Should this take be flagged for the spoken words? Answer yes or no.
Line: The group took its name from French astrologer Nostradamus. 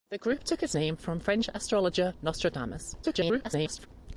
yes